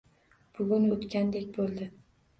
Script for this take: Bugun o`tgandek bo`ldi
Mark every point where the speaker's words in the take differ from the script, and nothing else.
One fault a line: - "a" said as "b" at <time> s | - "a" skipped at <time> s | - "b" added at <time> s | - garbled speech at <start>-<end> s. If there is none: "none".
none